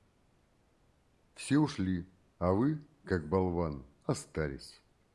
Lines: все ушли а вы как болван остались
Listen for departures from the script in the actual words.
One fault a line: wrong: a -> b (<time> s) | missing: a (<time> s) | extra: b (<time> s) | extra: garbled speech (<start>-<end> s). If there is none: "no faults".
no faults